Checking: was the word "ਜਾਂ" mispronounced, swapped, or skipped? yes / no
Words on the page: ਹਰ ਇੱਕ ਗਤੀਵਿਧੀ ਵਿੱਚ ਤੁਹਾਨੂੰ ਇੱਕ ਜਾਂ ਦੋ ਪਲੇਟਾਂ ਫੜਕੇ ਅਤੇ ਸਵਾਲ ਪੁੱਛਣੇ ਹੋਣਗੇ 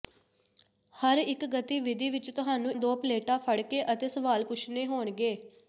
yes